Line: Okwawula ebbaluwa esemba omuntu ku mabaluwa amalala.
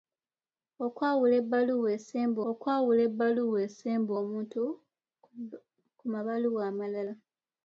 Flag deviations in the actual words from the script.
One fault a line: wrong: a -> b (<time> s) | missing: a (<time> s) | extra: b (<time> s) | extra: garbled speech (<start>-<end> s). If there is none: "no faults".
extra: okwawula ebbaluwa esemba (2.5 s)